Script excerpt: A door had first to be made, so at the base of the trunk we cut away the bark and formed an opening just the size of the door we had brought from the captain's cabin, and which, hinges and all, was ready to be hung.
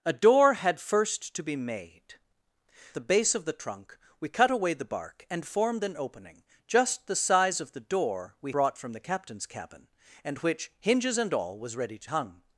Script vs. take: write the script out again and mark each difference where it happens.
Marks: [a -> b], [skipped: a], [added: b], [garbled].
A door had first to be made, [skipped: so at] the base of the trunk we cut away the bark and formed an opening just the size of the door we [skipped: had] brought from the captain's cabin, and which, hinges and all, was ready to [skipped: be] hung.